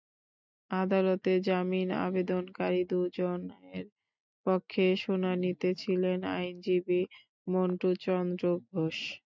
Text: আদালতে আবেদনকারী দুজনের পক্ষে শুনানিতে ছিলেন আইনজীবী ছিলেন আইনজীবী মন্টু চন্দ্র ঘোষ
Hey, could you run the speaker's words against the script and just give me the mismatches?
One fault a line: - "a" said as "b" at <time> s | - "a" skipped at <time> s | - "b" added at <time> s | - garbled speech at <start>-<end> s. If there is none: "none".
- "জামিন" added at 1.5 s
- "ছিলেন আইনজীবী" skipped at 7.0 s